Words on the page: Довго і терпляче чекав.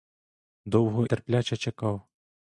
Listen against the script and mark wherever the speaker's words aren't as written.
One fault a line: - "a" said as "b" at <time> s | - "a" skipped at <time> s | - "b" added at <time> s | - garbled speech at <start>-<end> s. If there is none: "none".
- "і" skipped at 1.1 s